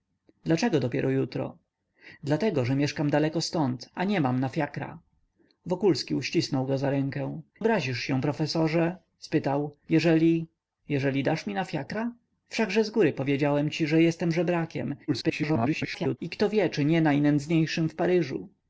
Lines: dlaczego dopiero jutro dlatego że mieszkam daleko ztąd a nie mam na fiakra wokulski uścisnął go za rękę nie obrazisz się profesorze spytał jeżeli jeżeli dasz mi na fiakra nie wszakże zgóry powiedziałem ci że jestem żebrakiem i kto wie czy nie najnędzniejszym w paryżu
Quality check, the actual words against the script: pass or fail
fail